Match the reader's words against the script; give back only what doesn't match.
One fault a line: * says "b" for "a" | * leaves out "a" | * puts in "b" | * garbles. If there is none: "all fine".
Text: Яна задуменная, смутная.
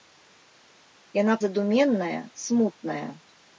all fine